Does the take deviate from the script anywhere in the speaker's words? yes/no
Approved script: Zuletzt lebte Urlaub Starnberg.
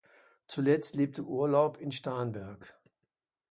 yes